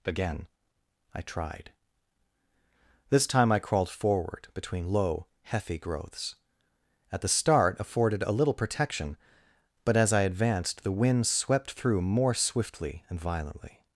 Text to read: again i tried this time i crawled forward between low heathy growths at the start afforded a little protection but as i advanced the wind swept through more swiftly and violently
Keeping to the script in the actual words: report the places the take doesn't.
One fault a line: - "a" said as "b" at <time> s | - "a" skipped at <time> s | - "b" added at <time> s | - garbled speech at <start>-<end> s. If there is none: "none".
none